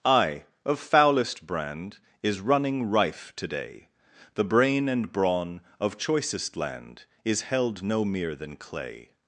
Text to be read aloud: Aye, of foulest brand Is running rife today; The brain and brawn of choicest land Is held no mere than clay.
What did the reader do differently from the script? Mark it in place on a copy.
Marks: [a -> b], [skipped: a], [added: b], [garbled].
Aye, of foulest brand Is running rife today; The brain and brawn of choicest land Is held no mere than clay.